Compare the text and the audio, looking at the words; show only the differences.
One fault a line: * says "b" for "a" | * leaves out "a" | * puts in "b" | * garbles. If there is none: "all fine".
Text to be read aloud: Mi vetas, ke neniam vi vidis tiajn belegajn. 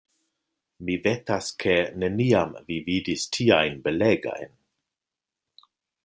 all fine